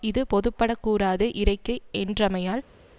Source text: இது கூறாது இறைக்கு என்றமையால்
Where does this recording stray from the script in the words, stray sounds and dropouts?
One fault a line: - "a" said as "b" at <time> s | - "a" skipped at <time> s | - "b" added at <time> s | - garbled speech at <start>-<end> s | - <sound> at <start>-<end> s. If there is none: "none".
- "பொதுப்படக்" added at 0.3 s